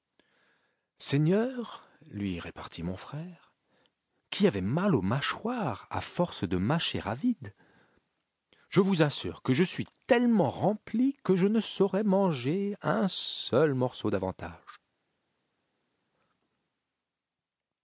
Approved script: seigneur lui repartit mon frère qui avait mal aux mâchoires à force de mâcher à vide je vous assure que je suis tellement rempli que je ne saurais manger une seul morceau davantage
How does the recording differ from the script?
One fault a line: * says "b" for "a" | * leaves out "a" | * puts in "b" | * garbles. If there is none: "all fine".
* says "un" for "une"